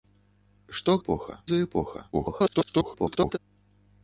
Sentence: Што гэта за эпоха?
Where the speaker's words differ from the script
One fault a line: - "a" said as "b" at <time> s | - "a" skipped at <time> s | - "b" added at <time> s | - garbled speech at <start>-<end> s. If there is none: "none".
- "гэта" said as "эпоха" at 1.0 s
- garbled speech at 2.1-3.4 s